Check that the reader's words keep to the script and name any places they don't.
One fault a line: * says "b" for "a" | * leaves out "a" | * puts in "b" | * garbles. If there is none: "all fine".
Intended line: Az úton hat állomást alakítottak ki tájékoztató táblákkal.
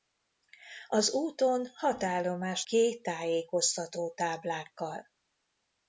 * leaves out "alakítottak"